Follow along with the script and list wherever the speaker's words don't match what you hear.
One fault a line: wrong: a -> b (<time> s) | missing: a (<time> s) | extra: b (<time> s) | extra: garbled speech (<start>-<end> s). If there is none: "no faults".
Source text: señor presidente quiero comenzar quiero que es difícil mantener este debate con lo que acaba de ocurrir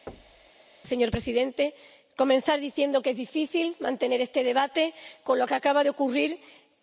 wrong: quiero -> diciendo (2.6 s)